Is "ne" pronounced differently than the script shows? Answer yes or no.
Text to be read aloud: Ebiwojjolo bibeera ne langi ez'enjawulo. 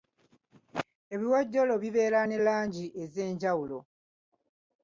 no